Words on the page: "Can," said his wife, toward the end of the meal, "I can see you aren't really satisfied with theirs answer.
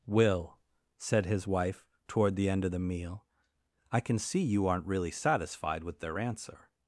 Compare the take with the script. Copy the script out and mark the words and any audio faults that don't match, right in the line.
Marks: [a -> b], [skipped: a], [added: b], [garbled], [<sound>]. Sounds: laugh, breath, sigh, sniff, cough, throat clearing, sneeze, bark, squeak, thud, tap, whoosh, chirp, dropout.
["Can," -> Will] said his wife, toward the end of the meal, "I can see you aren't really satisfied with [theirs -> their] answer.